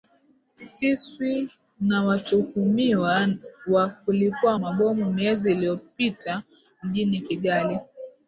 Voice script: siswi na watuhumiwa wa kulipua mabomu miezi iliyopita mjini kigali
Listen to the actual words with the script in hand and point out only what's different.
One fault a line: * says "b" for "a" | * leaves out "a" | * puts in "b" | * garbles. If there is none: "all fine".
all fine